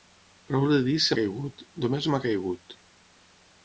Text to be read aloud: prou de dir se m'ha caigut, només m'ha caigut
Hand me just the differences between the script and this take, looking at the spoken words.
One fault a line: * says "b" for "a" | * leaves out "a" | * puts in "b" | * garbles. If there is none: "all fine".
* leaves out "m'ha"